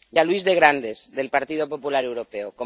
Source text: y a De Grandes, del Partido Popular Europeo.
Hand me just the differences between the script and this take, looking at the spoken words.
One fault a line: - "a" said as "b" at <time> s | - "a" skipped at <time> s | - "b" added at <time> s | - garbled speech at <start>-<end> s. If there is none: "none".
- "Luis" added at 0.2 s